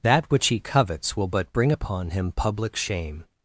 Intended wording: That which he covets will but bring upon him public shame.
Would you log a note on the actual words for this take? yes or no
no